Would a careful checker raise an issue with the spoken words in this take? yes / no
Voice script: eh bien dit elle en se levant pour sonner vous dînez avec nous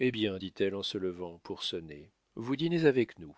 no